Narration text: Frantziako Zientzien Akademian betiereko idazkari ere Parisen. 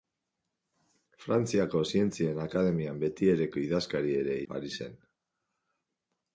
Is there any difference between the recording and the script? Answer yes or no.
no